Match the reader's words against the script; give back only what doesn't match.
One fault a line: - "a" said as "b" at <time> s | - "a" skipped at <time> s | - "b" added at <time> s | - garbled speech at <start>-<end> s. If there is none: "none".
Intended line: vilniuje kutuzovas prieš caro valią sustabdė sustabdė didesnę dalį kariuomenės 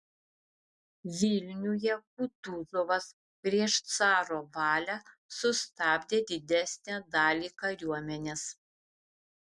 - "sustabdė" skipped at 6.2 s